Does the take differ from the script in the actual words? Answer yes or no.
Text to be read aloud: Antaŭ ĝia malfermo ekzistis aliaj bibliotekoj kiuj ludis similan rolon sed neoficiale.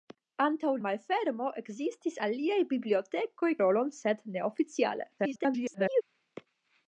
yes